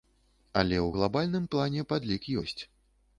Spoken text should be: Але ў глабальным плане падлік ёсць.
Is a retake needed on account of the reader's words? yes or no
no